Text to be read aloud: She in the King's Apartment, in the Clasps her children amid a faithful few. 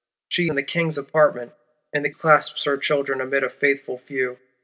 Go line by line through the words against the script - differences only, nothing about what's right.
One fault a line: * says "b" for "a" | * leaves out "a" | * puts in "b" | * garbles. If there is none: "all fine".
all fine